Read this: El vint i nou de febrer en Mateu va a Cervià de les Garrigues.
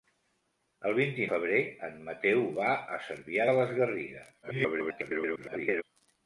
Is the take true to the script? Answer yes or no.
no